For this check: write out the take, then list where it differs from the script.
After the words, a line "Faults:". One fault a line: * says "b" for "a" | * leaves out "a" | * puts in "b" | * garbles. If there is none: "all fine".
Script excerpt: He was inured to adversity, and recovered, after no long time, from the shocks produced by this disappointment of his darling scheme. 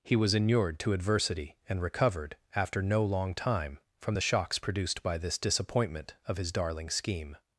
He was inured to adversity, and recovered, after no long time, from the shocks produced by this disappointment of his darling scheme.
Faults:
all fine